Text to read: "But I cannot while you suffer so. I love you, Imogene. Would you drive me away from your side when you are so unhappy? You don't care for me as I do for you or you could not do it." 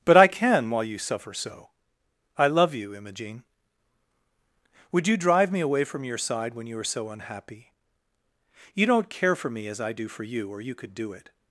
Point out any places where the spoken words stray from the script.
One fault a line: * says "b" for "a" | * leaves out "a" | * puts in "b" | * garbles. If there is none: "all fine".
* says "can" for "cannot"
* leaves out "not"